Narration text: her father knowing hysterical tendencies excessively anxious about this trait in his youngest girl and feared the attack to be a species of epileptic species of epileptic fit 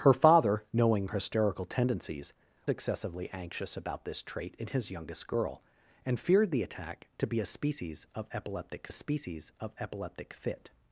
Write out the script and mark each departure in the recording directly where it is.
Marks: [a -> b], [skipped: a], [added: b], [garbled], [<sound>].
her father knowing hysterical tendencies excessively anxious about this trait in his youngest girl and feared the attack to be a species of epileptic species of epileptic fit